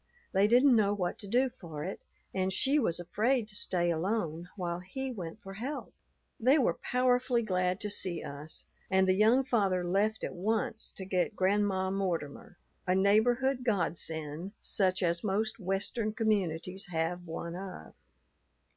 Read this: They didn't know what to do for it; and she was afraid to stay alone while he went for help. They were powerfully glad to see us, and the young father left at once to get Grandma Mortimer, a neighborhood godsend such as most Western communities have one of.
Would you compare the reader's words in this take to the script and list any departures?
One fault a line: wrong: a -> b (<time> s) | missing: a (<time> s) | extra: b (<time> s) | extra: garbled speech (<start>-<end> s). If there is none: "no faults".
no faults